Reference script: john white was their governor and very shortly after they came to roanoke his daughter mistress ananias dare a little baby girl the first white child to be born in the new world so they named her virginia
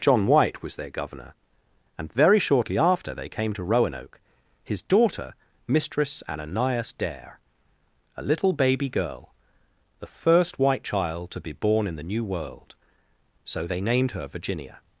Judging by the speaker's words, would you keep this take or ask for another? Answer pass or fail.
pass